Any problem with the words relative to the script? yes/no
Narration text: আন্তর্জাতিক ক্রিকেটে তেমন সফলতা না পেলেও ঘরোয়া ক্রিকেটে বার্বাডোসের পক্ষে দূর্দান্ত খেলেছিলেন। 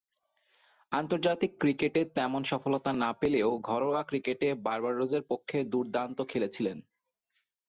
no